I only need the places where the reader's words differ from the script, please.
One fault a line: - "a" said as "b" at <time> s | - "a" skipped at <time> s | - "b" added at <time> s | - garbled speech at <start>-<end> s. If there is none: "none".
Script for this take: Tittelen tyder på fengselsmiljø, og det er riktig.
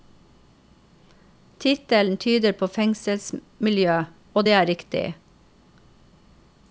none